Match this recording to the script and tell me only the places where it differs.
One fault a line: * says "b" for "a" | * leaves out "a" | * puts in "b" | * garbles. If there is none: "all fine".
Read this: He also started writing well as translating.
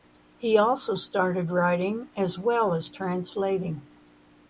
* puts in "as"